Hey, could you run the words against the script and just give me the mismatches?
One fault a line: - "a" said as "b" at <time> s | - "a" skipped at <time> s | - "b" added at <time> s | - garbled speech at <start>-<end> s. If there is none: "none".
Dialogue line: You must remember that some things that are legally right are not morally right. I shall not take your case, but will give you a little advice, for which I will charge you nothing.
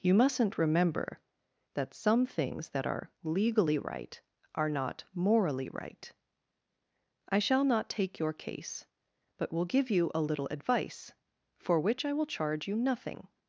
- "must" said as "mustn't" at 0.1 s